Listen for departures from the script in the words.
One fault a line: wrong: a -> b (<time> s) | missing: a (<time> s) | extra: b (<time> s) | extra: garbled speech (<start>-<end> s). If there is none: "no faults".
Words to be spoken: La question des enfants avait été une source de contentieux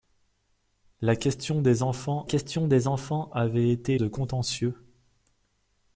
extra: question des enfants (2.2 s)
missing: une source (3.9 s)